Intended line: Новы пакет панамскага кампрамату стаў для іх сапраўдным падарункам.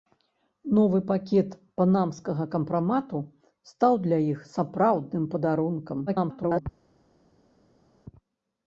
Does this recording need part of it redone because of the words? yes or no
yes